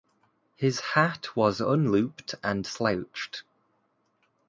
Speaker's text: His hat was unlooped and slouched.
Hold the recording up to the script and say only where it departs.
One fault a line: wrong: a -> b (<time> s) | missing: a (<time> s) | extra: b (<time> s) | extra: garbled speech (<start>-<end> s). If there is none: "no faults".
no faults